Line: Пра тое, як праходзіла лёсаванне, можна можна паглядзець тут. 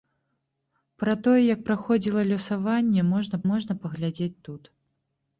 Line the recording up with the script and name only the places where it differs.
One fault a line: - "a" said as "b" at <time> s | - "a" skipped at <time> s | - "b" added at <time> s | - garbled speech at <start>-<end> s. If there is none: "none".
none